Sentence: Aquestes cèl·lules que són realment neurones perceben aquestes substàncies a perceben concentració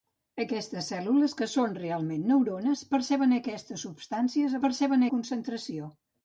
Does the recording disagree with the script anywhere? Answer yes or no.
no